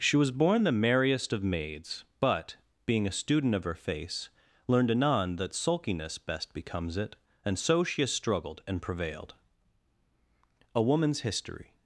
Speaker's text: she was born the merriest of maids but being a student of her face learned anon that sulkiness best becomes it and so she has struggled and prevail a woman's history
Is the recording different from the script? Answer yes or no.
yes